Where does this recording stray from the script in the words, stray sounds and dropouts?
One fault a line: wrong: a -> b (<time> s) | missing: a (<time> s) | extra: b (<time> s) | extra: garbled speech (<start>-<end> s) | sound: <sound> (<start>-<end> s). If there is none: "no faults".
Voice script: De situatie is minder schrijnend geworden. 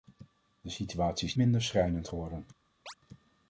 sound: chirp (2.9-2.9 s)